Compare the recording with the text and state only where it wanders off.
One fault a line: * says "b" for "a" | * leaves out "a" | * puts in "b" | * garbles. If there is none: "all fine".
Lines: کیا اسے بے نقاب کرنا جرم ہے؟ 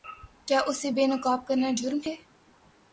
all fine